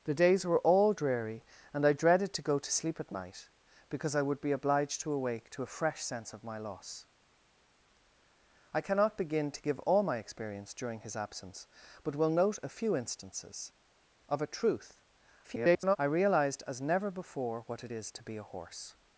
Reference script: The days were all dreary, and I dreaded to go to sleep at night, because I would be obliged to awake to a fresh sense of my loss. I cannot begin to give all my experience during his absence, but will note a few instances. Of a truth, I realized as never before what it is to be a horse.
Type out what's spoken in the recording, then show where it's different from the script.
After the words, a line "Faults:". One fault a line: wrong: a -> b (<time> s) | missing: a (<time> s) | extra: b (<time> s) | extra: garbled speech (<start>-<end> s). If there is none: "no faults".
The days were all dreary, and I dreaded to go to sleep at night, because I would be obliged to awake to a fresh sense of my loss. I cannot begin to give all my experience during his absence, but will note a few instances. Of a truth, [garbled] I realized as never before what it is to be a horse.
Faults:
extra: garbled speech (15.4-16.0 s)